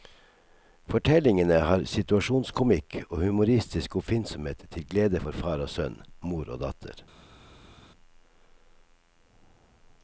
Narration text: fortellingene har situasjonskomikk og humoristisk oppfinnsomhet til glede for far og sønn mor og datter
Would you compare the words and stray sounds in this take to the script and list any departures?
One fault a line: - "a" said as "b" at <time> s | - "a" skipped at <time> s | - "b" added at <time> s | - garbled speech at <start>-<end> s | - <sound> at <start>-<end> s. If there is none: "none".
none